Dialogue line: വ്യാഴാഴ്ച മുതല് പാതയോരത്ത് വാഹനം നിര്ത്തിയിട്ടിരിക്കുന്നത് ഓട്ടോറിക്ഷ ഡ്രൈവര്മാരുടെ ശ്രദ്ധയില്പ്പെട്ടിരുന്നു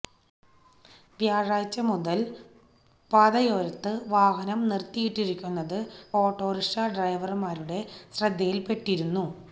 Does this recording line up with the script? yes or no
yes